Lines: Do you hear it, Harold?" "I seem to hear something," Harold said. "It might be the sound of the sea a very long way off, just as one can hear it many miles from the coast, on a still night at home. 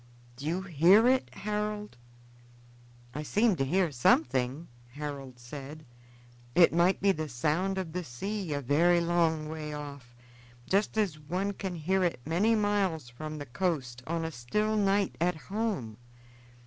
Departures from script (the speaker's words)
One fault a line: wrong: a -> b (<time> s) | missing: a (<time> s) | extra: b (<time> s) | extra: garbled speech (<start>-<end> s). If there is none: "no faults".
no faults